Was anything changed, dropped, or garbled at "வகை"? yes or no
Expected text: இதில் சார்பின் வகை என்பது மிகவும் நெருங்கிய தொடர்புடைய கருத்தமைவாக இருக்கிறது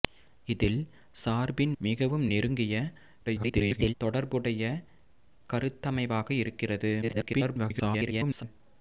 yes